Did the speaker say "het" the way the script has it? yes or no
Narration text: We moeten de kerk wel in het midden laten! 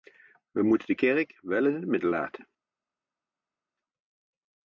yes